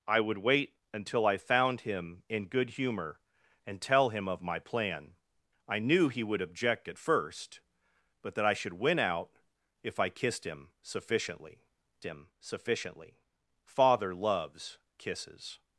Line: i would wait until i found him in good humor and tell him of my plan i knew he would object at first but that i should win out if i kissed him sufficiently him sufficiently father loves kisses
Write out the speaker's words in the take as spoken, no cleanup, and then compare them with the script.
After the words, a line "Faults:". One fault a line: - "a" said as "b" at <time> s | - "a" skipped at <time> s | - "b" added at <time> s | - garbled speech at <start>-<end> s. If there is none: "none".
i would wait until i found him in good humor and tell him of my plan i knew he would object at first but that i should win out if i kissed him sufficiently him sufficiently father loves kisses
Faults:
none